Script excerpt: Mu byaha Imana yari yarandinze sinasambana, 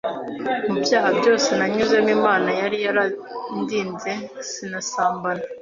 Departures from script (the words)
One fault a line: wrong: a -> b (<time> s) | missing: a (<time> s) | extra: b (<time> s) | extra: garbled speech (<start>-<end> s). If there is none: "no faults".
extra: byose nanyuzemo (1.2 s)